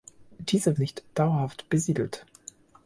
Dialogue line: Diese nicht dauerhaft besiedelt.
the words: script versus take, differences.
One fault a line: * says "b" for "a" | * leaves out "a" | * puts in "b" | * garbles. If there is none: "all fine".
all fine